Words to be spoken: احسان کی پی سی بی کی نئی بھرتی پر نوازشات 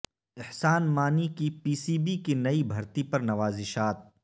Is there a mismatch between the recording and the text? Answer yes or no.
yes